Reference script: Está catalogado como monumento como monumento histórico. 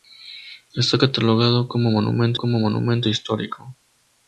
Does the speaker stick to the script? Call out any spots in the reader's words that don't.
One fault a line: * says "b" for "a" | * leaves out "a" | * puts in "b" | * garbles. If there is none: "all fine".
all fine